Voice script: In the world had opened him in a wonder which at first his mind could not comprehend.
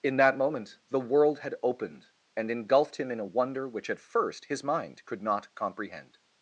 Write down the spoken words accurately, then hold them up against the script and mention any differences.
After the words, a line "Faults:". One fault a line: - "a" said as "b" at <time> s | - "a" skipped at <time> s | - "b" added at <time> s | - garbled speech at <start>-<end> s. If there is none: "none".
In that moment the world had opened and engulfed him in a wonder which at first his mind could not comprehend.
Faults:
- "that moment" added at 0.2 s
- "and engulfed" added at 2.4 s